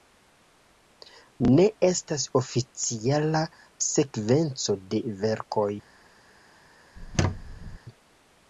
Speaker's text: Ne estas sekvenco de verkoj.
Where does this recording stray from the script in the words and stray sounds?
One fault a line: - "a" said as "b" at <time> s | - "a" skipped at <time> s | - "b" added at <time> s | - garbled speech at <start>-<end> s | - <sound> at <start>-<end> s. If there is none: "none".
- "oficiala" added at 2.4 s
- squeak at 7.0-7.8 s